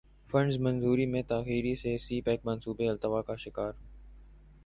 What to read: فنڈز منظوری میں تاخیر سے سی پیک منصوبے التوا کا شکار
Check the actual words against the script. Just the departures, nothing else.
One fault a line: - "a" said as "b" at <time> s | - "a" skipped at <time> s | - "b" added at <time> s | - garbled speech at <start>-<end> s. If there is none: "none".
none